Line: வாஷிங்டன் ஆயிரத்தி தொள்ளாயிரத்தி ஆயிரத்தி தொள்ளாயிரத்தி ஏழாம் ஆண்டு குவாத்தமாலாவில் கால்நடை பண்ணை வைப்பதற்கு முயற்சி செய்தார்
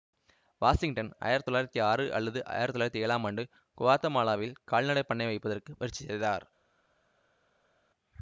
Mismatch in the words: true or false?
true